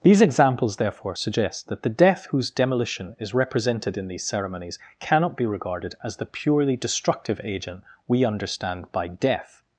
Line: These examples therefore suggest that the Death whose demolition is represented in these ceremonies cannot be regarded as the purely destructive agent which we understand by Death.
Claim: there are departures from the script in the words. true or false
true